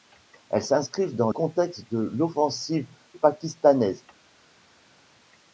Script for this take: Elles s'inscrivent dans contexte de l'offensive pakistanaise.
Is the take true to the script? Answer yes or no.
yes